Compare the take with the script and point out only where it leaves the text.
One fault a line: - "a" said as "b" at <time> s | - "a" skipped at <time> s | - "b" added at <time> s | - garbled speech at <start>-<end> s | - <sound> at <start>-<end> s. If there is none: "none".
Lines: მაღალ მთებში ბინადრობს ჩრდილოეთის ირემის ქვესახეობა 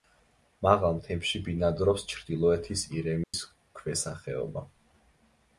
- dropout at 3.2-3.3 s